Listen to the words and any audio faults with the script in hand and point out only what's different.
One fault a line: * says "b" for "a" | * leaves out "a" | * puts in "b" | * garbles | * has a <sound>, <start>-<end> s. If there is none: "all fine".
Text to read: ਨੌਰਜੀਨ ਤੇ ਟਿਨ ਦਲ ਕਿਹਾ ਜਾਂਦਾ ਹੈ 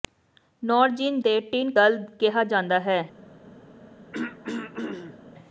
* has a throat clearing, 4.1-5.2 s